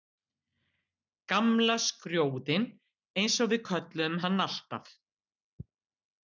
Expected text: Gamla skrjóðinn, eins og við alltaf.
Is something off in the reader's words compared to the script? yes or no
yes